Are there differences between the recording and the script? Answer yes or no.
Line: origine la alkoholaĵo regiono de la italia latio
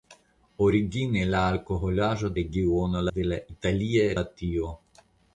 no